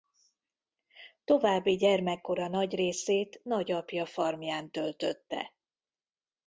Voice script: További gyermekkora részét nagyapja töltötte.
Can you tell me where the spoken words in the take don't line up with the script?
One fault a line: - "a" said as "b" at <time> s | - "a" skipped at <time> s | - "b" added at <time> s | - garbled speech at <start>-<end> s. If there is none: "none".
- "nagy" added at 2.5 s
- "farmján" added at 4.0 s